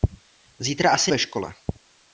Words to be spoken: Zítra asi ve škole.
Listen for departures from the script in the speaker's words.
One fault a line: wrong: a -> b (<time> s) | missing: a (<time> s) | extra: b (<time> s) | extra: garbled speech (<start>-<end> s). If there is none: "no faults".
no faults